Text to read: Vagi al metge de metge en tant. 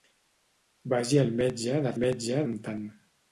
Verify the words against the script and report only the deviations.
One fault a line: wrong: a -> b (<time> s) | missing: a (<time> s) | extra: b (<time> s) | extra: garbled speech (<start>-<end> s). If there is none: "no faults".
no faults